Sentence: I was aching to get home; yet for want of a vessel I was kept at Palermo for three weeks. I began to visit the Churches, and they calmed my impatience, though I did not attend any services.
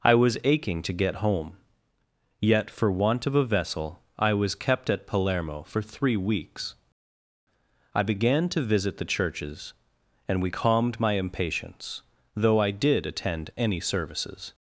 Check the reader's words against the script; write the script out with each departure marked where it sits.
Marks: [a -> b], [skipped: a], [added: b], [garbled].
I was aching to get home; yet for want of a vessel I was kept at Palermo for three weeks. I began to visit the Churches, and [they -> we] calmed my impatience, though I did [skipped: not] attend any services.